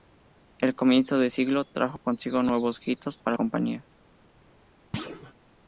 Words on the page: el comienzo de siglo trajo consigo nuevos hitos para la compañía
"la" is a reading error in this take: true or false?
true